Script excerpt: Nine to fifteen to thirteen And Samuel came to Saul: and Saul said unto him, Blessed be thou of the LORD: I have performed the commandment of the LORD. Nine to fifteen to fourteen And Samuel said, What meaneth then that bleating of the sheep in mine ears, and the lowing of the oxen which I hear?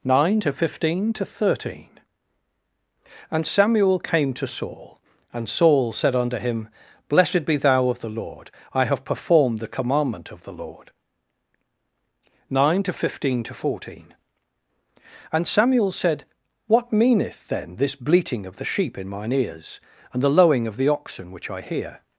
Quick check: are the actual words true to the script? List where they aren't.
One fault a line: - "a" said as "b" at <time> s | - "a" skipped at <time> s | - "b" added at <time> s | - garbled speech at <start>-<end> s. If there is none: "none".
- "that" said as "this" at 17.8 s